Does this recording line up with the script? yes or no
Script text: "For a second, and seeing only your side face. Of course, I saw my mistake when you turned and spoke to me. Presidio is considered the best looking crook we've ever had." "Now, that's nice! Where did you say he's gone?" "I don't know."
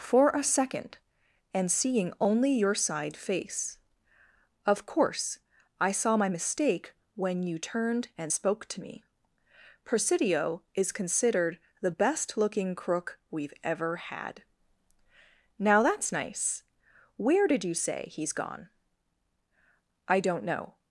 yes